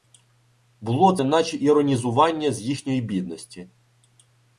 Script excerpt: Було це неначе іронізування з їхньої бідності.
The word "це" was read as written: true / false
false